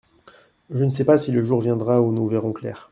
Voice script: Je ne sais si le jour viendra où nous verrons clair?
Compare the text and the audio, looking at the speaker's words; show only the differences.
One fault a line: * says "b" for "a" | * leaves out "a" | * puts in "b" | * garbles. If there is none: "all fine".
* puts in "pas"